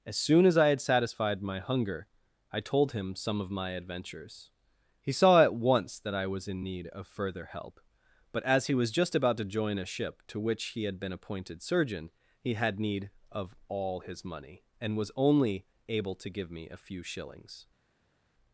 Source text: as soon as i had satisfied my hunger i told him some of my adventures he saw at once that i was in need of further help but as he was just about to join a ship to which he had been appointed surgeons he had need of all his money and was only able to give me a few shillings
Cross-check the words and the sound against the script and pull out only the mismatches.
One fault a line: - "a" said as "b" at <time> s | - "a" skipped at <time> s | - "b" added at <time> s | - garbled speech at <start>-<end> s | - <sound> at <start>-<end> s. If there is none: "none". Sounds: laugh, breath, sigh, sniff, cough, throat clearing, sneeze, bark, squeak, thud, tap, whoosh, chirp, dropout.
- "surgeons" said as "surgeon" at 11.6 s